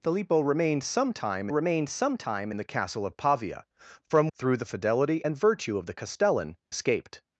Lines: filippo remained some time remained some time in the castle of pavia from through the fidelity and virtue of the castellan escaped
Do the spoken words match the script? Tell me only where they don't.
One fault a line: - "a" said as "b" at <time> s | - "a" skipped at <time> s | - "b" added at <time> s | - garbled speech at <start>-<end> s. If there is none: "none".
none